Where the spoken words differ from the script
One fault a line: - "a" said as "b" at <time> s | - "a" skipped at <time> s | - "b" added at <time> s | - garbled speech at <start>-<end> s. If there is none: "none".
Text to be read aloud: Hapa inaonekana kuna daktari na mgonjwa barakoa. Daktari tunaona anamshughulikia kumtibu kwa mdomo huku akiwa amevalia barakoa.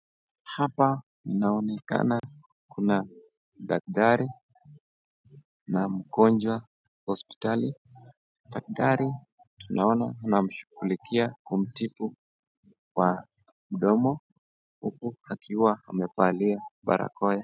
- "barakoa" said as "hospitali" at 7.1 s